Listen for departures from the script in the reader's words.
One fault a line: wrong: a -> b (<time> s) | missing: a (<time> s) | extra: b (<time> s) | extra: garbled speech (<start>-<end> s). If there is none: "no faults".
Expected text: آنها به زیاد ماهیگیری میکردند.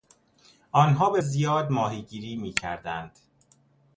no faults